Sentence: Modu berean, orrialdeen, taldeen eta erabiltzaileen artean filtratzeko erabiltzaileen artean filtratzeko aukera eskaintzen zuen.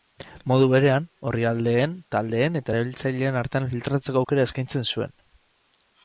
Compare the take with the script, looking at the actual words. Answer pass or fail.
fail